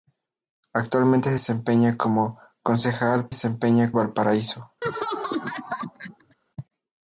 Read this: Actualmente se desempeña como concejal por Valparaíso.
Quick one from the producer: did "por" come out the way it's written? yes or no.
no